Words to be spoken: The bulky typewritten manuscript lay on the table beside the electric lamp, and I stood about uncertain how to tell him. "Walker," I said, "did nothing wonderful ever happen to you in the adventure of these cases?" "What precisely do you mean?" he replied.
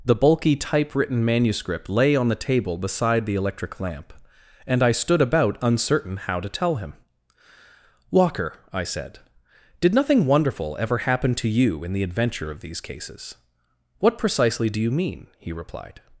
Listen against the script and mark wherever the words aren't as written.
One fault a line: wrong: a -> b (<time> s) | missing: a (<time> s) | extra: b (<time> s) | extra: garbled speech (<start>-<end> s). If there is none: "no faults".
no faults